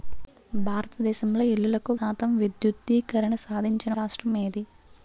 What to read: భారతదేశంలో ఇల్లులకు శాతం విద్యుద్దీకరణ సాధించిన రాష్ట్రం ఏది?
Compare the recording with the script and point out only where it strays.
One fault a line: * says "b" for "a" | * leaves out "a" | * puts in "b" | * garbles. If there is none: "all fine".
all fine